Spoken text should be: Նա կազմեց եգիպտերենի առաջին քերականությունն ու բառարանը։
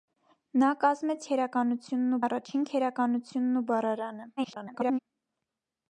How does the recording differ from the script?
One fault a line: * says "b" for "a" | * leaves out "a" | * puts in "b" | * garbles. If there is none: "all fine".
* says "քերականությունն" for "եգիպտերենի"
* garbles